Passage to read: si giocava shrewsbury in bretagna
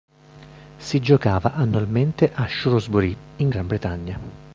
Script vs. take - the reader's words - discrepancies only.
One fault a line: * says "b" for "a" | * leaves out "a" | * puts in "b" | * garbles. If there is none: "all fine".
* puts in "annualmente a"
* puts in "gran"